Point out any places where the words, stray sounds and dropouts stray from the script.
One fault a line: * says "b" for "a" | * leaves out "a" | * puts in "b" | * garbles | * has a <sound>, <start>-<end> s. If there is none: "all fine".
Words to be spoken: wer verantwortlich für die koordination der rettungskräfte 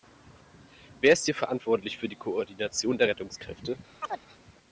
* puts in "ist hier"
* has a chirp, 4.0-4.2 s